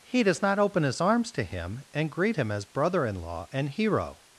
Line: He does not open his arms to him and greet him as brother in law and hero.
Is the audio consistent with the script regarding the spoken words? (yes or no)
yes